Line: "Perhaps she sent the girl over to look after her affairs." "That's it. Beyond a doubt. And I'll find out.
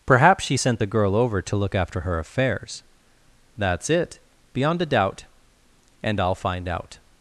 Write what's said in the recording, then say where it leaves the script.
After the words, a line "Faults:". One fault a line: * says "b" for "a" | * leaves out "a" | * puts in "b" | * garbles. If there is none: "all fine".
"Perhaps she sent the girl over to look after her affairs." "That's it. Beyond a doubt. And I'll find out.
Faults:
all fine